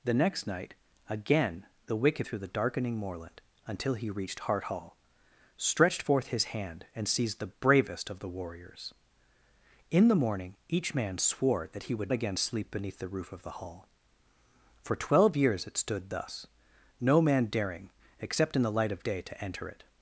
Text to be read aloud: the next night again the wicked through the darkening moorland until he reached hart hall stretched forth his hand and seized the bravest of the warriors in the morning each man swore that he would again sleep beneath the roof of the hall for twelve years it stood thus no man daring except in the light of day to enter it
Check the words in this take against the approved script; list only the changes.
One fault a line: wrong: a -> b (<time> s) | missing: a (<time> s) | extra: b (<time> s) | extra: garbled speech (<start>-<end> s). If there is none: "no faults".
no faults